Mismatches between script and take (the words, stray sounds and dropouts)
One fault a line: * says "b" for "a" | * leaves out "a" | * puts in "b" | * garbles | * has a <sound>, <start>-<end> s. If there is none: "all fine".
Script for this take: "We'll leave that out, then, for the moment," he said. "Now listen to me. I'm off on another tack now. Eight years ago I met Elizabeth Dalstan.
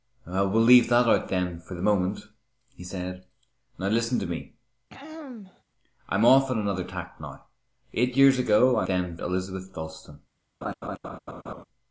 * has a throat clearing, 4.9-5.6 s
* says "then" for "met"
* has a laugh, 10.6-11.6 s